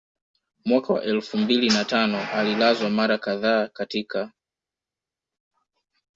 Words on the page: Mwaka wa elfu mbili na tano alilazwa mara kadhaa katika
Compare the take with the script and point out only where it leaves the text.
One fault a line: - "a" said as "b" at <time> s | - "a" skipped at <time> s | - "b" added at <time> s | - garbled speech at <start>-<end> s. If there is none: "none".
none